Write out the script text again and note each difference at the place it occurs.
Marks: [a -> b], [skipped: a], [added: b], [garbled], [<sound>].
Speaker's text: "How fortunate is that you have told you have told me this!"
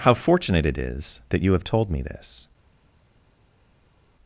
"How fortunate [added: it] is that you have told [skipped: you have told] me this!"